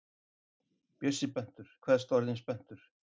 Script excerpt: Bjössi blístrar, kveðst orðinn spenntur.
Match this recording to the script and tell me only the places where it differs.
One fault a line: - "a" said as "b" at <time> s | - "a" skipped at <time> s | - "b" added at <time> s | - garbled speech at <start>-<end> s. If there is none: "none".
- "blístrar" said as "spenntur" at 1.3 s